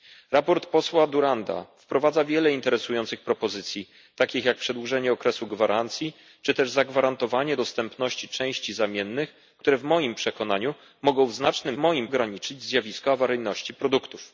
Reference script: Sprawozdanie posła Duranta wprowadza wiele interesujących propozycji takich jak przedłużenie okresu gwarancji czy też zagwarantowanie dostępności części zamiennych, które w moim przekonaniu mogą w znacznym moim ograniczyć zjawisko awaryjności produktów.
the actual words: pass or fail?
pass